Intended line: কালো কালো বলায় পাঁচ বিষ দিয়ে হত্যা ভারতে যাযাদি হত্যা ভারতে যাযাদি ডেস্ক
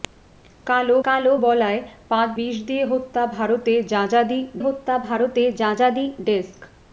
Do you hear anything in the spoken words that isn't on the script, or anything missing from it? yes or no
no